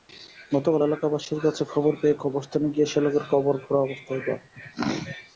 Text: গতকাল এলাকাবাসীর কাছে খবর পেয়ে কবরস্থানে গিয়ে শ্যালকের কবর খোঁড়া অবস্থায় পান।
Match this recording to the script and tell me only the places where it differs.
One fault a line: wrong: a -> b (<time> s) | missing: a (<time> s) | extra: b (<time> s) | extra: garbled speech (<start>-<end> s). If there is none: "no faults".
no faults